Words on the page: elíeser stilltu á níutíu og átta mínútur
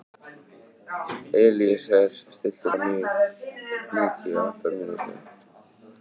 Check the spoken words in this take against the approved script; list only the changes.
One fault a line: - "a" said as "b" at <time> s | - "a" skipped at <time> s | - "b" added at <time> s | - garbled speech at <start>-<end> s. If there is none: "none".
none